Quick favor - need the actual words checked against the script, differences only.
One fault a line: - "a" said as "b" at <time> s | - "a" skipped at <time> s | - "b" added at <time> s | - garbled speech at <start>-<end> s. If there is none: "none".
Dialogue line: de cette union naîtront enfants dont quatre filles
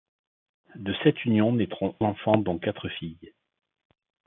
none